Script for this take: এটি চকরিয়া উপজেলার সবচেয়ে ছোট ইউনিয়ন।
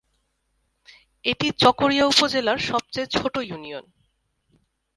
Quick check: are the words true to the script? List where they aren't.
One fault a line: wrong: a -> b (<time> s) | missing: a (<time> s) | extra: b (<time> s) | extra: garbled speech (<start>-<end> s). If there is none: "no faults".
no faults